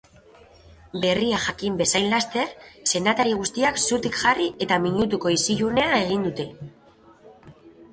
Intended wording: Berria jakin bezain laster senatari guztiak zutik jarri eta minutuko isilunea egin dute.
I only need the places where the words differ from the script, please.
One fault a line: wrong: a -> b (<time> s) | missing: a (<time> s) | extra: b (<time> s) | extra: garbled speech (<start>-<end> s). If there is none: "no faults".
no faults